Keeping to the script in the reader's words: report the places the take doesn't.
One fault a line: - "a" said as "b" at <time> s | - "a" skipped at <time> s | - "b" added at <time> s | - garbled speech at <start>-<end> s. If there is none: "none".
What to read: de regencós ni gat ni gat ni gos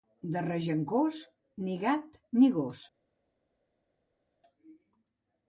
- "gat ni" skipped at 2.5 s